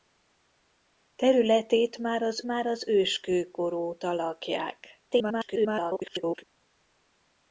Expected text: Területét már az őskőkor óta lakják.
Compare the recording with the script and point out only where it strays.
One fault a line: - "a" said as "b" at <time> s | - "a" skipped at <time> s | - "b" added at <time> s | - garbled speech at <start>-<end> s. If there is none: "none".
- "már az" added at 2.4 s
- garbled speech at 5.1-6.4 s